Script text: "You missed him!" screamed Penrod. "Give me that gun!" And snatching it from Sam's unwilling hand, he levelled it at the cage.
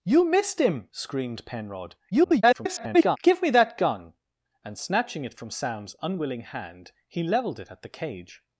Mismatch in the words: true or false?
true